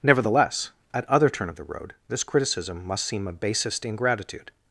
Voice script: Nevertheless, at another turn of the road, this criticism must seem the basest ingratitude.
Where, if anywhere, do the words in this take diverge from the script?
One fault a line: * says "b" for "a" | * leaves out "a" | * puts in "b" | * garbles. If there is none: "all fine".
* says "other" for "another"
* says "a" for "the"